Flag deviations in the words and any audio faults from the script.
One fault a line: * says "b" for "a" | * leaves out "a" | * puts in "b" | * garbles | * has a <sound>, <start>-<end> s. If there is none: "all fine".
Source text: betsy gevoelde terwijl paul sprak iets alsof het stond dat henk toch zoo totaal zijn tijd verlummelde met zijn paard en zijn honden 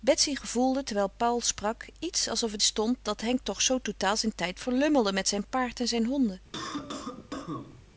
* has a cough, 6.5-7.8 s